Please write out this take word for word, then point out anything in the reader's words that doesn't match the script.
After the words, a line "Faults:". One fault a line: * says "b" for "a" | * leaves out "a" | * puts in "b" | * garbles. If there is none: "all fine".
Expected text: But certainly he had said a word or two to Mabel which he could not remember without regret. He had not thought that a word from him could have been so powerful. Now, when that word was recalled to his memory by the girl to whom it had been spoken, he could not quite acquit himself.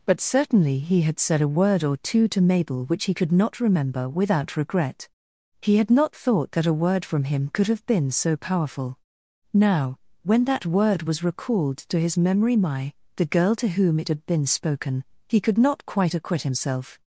But certainly he had said a word or two to Mabel which he could not remember without regret. He had not thought that a word from him could have been so powerful. Now, when that word was recalled to his memory my the girl to whom it had been spoken, he could not quite acquit himself.
Faults:
* says "my" for "by"